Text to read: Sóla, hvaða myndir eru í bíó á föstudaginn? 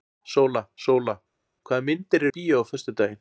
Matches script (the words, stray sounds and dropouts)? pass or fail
fail